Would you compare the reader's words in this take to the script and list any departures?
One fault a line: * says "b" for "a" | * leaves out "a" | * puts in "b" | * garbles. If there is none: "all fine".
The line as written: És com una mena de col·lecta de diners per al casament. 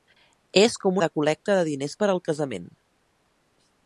* leaves out "una mena"